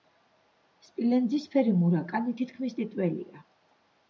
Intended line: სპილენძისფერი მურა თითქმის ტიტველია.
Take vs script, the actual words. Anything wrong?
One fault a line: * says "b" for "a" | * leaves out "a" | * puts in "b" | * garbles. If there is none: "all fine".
* puts in "კანი"